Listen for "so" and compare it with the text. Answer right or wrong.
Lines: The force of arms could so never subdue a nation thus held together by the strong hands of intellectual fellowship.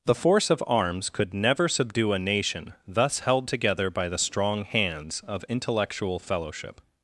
wrong